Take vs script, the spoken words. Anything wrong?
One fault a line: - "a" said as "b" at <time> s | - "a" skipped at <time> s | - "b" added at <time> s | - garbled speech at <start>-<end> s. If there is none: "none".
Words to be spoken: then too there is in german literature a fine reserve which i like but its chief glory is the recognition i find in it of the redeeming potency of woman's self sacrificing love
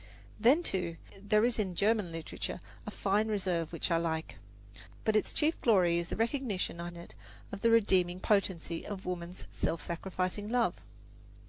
- "find" skipped at 6.9 s